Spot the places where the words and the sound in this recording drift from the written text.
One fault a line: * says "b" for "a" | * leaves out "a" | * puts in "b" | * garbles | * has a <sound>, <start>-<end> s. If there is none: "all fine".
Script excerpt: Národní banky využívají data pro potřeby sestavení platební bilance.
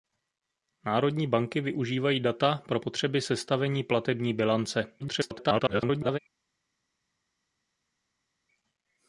* garbles